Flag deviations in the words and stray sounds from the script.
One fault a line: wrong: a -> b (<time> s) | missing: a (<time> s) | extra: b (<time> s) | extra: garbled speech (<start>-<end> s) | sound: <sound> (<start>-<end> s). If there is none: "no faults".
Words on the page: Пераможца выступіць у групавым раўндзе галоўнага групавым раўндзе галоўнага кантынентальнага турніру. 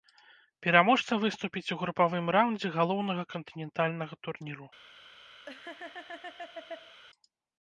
missing: групавым раўндзе галоўнага (3.2 s)
sound: laugh (5.5-7.0 s)